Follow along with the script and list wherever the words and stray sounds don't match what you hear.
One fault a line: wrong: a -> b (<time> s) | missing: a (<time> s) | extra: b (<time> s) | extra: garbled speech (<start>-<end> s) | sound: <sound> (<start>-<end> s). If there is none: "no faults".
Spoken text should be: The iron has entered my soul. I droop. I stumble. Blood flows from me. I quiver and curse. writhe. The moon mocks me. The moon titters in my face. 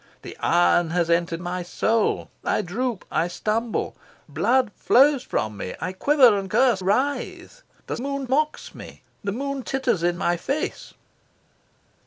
no faults